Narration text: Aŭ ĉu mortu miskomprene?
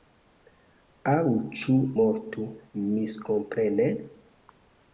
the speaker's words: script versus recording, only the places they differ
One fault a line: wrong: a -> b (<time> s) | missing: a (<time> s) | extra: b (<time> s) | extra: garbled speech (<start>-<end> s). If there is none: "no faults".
no faults